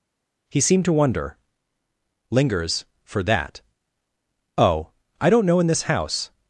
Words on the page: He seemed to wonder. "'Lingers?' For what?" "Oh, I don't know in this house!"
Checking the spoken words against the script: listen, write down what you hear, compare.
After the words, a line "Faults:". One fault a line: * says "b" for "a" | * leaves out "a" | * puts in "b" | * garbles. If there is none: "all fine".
He seemed to wonder. "'Lingers?' For that?" "Oh, I don't know in this house!"
Faults:
* says "that" for "what"